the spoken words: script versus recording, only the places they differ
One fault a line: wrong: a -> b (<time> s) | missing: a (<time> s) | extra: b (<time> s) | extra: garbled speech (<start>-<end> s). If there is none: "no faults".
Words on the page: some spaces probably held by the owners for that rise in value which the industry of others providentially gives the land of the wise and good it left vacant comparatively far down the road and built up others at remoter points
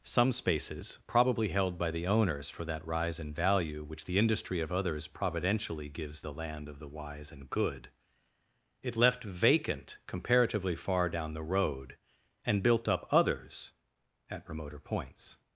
no faults